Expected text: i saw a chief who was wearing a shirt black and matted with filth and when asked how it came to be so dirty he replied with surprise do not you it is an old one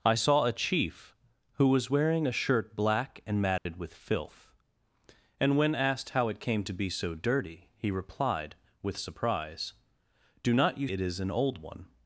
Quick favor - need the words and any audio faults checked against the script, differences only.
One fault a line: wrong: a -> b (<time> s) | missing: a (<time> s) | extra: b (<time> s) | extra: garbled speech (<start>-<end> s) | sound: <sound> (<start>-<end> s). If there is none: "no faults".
sound: dropout (3.6-3.7 s)